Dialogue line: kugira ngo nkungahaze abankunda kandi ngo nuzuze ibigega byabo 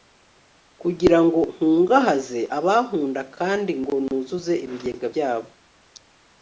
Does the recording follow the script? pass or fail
pass